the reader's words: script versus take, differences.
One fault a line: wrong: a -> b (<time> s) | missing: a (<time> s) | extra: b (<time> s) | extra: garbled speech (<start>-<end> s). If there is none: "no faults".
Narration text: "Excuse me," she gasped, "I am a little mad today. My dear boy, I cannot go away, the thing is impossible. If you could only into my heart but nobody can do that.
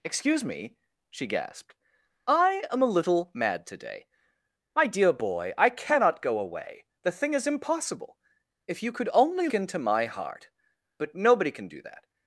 no faults